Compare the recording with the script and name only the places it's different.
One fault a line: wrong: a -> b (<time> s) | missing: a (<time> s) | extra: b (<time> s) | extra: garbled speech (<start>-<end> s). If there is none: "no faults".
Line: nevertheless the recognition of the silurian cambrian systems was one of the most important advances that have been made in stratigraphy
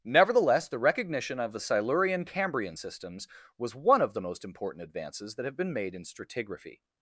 no faults